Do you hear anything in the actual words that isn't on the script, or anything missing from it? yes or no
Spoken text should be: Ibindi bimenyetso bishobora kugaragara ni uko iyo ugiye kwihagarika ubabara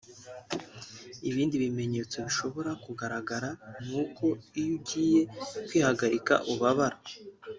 no